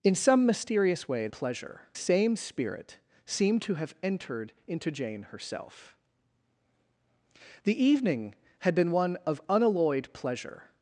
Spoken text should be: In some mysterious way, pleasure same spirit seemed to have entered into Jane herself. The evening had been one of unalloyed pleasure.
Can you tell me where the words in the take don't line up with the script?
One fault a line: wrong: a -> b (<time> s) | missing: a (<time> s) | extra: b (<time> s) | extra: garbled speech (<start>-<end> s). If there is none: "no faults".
no faults